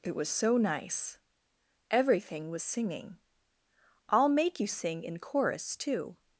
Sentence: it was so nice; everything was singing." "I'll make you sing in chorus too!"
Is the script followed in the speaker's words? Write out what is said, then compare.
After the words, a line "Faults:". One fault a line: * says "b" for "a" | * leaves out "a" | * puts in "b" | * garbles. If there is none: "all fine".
it was so nice; everything was singing." "I'll make you sing in chorus too!"
Faults:
all fine